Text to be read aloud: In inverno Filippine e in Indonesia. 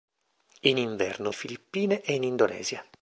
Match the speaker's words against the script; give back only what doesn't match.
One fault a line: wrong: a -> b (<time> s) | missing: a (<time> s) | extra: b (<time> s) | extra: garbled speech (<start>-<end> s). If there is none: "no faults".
no faults